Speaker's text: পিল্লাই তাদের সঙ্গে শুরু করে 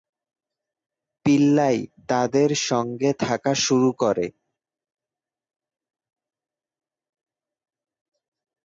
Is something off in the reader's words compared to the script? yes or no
yes